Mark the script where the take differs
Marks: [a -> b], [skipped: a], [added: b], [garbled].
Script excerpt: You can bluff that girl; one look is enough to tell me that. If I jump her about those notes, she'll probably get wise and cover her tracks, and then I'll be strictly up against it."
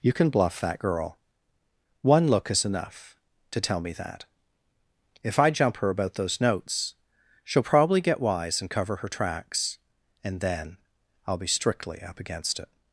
You can bluff that girl; one look is enough to tell me that. If I jump her about those notes, she'll probably get wise and cover her tracks, and then I'll be strictly up against it."